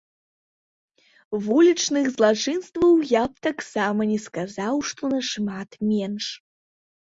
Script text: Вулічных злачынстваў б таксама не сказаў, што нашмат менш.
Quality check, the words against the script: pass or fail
fail